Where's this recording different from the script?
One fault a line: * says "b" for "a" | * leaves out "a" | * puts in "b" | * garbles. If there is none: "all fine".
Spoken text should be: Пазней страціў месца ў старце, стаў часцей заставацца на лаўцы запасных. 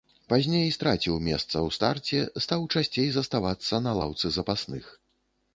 all fine